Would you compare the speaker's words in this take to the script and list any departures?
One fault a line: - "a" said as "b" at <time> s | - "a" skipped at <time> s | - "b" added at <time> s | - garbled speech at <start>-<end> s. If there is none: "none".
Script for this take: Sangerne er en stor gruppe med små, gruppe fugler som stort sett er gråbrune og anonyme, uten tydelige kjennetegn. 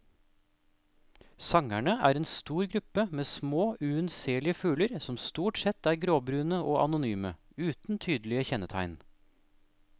- "gruppe" said as "unnselige" at 3.8 s